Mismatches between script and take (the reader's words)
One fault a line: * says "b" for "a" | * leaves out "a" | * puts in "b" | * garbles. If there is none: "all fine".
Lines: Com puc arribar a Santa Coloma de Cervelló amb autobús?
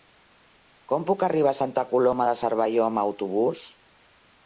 all fine